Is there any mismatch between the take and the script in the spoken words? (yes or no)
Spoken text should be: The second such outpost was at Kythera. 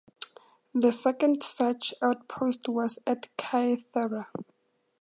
no